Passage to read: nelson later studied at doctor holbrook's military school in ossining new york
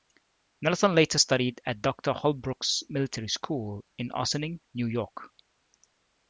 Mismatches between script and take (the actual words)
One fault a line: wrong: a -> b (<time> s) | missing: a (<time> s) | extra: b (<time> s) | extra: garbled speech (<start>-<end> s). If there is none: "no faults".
no faults